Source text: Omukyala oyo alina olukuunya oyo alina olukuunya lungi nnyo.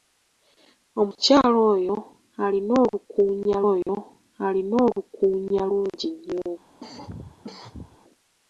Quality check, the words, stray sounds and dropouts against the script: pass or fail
fail